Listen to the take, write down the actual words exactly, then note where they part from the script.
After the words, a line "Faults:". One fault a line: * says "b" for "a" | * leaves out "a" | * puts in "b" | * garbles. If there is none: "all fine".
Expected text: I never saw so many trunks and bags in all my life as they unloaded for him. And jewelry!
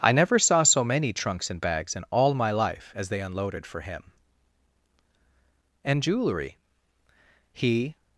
I never saw so many trunks and bags in all my life as they unloaded for him. And jewelry! He
Faults:
* puts in "He"